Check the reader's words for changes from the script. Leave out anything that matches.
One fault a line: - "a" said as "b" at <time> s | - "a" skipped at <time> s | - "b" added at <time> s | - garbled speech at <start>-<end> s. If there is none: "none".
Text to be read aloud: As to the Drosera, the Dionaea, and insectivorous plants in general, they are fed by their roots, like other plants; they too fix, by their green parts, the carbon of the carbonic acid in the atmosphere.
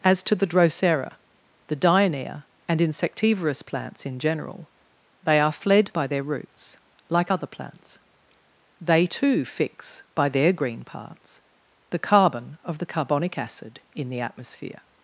- "fed" said as "fled" at 5.5 s